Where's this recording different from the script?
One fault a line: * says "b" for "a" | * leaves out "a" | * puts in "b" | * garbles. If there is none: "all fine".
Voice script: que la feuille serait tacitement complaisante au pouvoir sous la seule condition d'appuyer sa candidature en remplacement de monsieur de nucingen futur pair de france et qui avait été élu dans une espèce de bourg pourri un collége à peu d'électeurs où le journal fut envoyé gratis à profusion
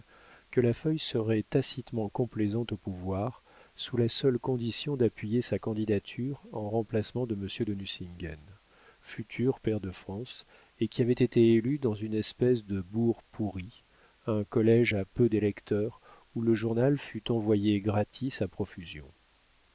all fine